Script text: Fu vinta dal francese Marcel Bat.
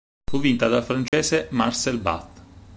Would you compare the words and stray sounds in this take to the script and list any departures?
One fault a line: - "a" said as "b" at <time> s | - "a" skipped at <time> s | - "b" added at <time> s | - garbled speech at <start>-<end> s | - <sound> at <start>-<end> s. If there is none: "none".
- dropout at 1.1-1.1 s